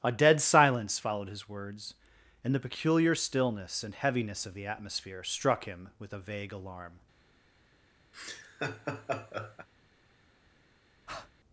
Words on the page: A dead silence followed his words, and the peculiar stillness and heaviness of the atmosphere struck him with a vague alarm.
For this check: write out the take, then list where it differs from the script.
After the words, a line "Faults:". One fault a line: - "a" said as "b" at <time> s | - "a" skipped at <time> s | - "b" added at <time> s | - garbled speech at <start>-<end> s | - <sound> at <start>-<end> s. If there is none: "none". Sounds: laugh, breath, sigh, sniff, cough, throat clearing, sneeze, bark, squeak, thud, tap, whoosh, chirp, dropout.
A dead silence followed his words, and the peculiar stillness and heaviness of the atmosphere struck him with a vague alarm.
Faults:
- laugh at 8.1-9.7 s
- breath at 11.1-11.3 s